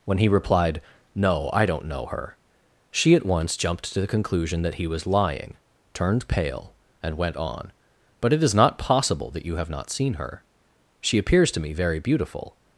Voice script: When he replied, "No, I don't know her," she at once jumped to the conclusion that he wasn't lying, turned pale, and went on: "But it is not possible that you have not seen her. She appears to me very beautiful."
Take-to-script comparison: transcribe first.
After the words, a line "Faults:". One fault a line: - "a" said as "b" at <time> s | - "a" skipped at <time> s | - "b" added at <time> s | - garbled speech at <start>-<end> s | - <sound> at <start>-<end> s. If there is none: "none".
When he replied, "No, I don't know her," she at once jumped to the conclusion that he was lying, turned pale, and went on: "But it is not possible that you have not seen her. She appears to me very beautiful."
Faults:
- "wasn't" said as "was" at 4.9 s